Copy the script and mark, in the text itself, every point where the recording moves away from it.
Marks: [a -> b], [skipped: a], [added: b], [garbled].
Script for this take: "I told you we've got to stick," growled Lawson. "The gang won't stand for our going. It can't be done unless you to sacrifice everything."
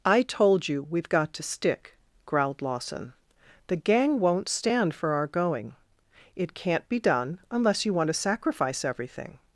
"I told you we've got to stick," growled Lawson. "The gang won't stand for our going. It can't be done unless you [added: want] to sacrifice everything."